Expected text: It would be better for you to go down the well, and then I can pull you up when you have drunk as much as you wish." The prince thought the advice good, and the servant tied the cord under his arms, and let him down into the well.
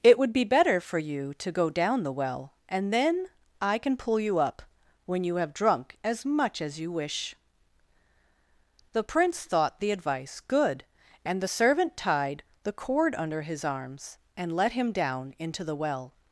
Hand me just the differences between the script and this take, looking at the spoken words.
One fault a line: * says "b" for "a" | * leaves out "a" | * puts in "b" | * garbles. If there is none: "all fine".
all fine